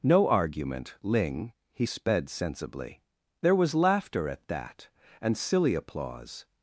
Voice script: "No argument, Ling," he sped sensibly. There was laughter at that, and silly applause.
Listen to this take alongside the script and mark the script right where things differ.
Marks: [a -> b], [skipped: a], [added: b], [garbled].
"No argument, Ling," he sped sensibly. There was laughter at that, and silly applause.